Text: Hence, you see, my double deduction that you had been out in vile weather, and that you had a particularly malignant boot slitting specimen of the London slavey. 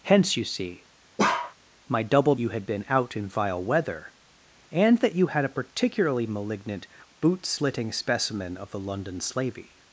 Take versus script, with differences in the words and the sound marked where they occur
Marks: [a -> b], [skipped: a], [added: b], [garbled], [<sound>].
Hence, you see, [bark] my double [skipped: deduction that] you had been out in vile weather, and that you had a particularly malignant boot slitting specimen of the London slavey.